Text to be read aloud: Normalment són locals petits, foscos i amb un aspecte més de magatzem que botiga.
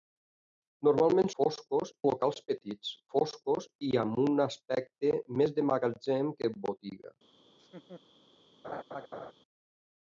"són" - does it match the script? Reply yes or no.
no